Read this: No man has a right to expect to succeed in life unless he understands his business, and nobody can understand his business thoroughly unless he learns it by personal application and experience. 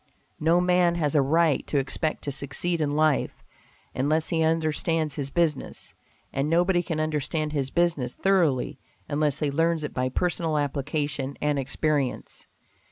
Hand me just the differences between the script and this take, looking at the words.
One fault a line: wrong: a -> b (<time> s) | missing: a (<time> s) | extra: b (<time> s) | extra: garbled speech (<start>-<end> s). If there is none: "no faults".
no faults